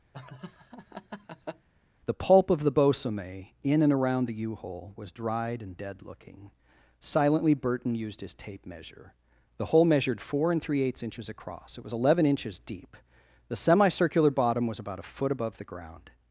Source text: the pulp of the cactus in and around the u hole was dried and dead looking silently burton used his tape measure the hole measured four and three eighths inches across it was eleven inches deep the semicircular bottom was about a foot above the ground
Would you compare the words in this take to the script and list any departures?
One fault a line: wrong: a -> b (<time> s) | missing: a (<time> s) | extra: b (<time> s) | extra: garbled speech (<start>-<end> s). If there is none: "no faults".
wrong: cactus -> bosome (2.7 s)